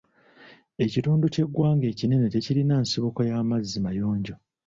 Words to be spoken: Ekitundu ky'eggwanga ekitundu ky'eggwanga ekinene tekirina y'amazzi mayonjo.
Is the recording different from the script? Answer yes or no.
yes